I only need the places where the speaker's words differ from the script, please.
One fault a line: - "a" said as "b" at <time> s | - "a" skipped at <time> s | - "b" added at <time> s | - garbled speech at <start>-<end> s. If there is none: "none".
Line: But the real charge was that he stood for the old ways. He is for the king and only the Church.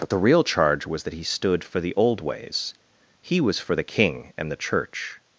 - "is" said as "was" at 3.4 s
- "only" skipped at 4.5 s